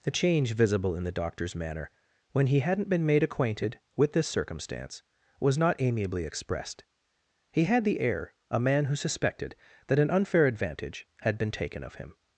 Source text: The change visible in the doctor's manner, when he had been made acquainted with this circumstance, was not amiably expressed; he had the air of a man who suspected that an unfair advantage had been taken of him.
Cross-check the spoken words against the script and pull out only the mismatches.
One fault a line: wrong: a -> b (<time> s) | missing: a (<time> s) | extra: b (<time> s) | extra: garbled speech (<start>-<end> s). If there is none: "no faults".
wrong: had -> hadn't (2.6 s)
missing: of (8.3 s)